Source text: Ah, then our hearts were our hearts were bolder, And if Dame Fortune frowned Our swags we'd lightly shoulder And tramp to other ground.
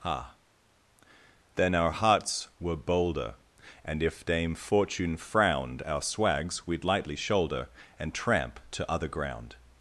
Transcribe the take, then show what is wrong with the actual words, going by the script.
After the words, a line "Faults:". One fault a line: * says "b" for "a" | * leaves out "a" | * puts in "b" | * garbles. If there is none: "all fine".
Ah, then our hearts were bolder, And if Dame Fortune frowned Our swags we'd lightly shoulder And tramp to other ground.
Faults:
* leaves out "our hearts were"